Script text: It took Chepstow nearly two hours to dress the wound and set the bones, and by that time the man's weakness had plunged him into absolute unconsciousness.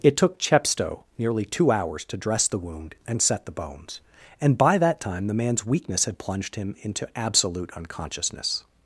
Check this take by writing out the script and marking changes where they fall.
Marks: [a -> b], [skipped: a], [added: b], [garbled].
It took Chepstow nearly two hours to dress the wound and set the bones, and by that time the man's weakness had plunged him into absolute unconsciousness.